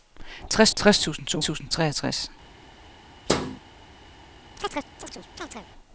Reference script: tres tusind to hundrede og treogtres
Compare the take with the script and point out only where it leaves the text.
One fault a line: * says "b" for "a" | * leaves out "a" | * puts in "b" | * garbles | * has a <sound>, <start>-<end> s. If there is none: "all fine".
* puts in "tres"
* says "tusind" for "hundrede"
* has a thud, 3.3-3.6 s
* has a chirp, 4.6-5.7 s